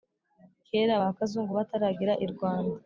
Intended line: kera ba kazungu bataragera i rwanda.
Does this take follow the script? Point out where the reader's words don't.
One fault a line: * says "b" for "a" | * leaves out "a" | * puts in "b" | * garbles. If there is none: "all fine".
all fine